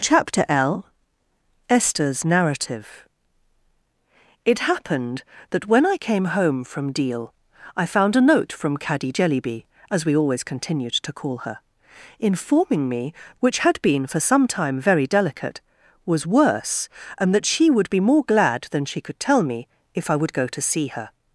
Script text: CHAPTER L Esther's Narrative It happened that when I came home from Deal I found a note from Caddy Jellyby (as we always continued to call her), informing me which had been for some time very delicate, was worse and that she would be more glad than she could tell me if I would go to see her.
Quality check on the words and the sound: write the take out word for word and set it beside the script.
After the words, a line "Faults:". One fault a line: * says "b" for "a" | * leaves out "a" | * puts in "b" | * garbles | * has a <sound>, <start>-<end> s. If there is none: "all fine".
CHAPTER L Esther's Narrative It happened that when I came home from Deal I found a note from Caddy Jellyby (as we always continued to call her), informing me which had been for some time very delicate, was worse and that she would be more glad than she could tell me if I would go to see her.
Faults:
all fine